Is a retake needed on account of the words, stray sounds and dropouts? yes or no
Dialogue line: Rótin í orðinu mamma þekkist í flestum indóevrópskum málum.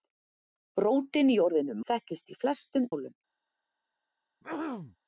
yes